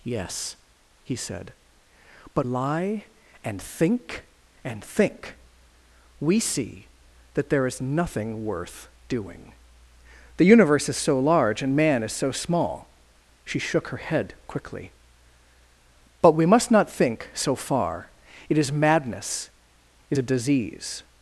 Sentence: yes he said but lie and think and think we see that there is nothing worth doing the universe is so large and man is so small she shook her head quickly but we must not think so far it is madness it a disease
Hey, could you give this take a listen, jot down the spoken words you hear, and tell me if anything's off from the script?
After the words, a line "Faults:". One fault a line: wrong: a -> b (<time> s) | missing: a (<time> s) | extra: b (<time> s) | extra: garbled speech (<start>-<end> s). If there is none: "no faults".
yes he said but lie and think and think we see that there is nothing worth doing the universe is so large and man is so small she shook her head quickly but we must not think so far it is madness it a disease
Faults:
no faults